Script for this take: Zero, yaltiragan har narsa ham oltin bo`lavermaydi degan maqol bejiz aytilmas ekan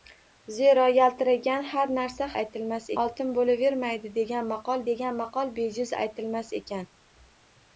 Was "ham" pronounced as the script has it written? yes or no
no